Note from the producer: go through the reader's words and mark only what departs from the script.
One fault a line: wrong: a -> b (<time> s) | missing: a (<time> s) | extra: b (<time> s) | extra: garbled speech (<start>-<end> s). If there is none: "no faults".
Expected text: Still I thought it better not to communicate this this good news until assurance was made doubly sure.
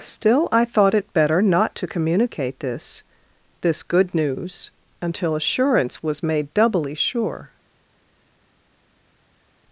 no faults